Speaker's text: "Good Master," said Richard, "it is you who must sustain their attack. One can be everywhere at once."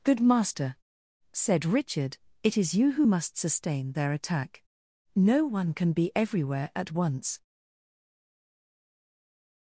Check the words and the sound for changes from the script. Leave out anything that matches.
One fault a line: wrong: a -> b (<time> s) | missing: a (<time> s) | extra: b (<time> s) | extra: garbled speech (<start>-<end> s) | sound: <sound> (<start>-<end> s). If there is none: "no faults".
extra: No (5.1 s)